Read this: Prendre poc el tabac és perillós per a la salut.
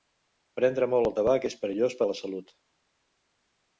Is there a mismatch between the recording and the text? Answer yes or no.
yes